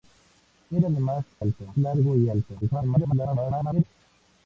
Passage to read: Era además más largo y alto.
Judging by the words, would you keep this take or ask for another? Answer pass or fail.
fail